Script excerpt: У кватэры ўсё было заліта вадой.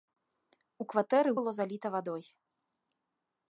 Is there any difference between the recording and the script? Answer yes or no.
yes